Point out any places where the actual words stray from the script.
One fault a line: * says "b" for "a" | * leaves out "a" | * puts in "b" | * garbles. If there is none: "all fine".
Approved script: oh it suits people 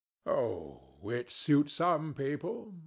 * puts in "some"